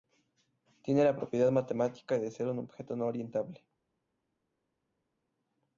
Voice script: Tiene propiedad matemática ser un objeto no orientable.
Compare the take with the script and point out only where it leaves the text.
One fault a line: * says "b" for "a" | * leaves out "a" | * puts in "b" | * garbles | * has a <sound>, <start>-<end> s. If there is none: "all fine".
* puts in "la"
* puts in "de"